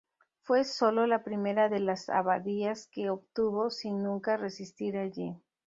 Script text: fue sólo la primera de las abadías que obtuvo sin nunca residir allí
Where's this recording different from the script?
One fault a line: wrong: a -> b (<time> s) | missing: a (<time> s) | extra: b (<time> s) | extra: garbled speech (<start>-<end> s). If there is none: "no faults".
no faults